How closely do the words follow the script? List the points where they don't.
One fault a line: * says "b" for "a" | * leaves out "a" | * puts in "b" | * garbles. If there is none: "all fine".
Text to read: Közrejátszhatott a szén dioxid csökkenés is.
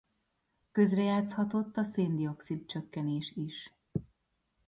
all fine